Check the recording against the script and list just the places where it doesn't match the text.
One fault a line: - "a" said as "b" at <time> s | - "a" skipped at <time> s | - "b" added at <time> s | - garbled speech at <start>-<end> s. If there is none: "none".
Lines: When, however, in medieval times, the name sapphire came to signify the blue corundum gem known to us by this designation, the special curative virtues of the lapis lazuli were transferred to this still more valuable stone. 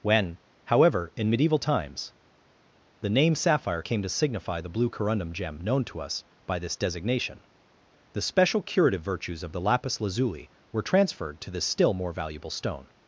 none